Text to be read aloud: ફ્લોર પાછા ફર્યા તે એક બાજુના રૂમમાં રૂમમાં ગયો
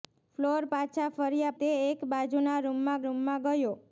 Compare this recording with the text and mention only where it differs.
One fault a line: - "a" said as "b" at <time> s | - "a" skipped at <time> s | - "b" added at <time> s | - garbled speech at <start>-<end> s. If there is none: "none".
none